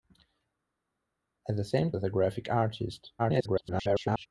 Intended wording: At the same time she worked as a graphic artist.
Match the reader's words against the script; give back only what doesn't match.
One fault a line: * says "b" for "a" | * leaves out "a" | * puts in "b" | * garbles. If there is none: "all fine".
* leaves out "time she worked"
* garbles